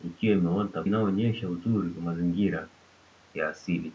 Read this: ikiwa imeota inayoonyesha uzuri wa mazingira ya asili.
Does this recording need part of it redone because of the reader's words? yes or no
no